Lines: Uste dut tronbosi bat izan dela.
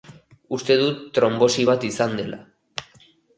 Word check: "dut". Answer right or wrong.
right